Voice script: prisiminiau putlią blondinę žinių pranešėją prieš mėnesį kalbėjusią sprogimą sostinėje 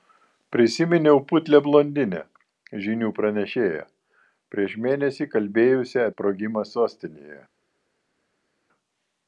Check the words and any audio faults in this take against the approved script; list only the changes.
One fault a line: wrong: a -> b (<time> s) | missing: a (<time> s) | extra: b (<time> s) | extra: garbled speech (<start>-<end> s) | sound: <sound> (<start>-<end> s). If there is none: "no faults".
no faults